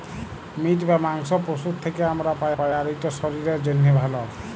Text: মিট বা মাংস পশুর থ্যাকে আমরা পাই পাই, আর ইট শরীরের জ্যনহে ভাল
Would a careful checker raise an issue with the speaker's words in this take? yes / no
no